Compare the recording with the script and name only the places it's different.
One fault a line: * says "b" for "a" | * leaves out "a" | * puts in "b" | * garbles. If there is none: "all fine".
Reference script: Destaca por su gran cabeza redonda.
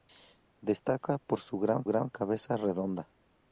* puts in "gran"